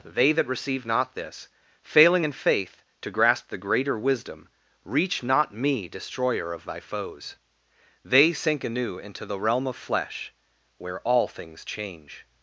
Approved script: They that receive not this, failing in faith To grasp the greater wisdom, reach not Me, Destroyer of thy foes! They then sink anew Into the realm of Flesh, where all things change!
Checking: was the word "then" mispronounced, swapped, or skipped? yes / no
yes